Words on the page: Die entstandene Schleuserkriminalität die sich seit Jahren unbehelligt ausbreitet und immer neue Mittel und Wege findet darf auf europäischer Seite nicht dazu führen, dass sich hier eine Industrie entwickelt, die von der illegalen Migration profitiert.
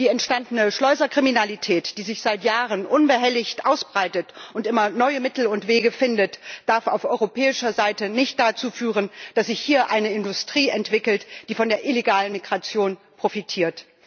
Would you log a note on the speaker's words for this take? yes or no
no